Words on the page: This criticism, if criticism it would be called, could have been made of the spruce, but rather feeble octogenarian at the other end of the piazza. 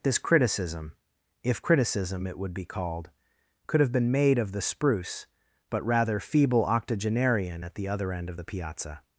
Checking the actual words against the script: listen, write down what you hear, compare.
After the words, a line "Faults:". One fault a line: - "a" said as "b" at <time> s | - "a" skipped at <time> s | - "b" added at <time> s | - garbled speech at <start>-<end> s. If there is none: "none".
This criticism, if criticism it would be called, could have been made of the spruce, but rather feeble octogenarian at the other end of the piazza.
Faults:
none